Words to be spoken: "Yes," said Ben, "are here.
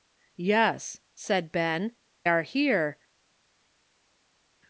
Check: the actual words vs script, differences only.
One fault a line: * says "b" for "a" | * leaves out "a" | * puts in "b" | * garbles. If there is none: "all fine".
all fine